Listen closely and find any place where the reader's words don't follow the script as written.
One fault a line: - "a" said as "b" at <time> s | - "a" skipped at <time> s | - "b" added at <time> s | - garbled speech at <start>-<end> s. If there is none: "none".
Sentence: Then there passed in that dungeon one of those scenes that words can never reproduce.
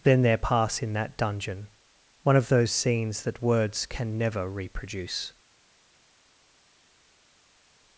- "passed" said as "pass" at 0.4 s